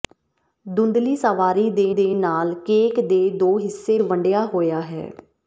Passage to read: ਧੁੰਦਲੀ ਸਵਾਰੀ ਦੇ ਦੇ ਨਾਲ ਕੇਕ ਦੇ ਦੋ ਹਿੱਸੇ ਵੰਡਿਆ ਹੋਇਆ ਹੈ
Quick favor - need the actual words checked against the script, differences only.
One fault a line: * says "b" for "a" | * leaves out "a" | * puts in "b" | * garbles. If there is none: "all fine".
all fine